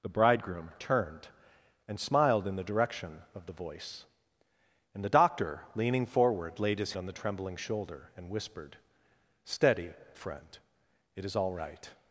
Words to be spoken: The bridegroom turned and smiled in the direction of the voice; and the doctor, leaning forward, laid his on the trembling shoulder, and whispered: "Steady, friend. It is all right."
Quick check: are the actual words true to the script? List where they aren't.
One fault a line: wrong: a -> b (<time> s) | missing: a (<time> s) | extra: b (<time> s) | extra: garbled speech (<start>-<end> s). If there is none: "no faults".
no faults